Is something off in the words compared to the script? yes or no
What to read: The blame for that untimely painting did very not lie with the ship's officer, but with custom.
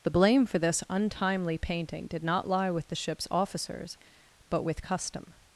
yes